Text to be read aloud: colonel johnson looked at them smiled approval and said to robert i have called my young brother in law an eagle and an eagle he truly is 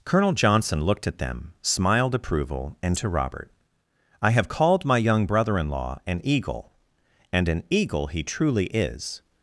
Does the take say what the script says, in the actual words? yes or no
no